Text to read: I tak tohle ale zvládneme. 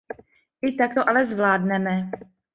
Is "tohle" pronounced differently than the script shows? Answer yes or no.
yes